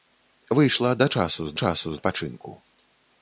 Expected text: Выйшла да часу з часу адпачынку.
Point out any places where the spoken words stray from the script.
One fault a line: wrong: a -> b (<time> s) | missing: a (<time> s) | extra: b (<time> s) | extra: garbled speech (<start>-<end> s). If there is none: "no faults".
no faults